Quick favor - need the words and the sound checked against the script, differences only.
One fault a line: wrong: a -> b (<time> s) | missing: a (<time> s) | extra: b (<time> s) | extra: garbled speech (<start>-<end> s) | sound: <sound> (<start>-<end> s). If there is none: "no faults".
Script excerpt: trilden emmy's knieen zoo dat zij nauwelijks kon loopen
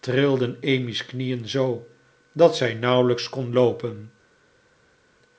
no faults